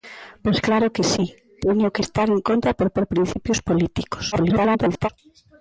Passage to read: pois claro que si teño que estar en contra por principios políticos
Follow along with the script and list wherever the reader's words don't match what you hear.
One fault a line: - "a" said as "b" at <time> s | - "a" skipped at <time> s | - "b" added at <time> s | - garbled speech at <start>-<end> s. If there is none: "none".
- "por" added at 3.0 s
- garbled speech at 4.3-5.1 s